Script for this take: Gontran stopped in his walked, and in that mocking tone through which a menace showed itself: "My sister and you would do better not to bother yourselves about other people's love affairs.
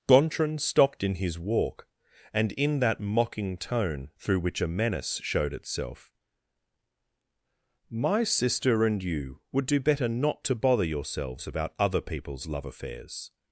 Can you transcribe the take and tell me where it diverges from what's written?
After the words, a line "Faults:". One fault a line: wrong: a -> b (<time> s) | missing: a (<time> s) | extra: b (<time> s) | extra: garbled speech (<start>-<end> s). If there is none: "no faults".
Gontran stopped in his walk, and in that mocking tone through which a menace showed itself: "My sister and you would do better not to bother yourselves about other people's love affairs.
Faults:
wrong: walked -> walk (1.4 s)